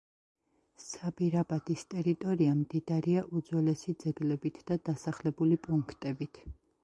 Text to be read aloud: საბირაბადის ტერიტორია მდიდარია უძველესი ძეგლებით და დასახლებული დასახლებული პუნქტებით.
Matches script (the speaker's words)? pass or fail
fail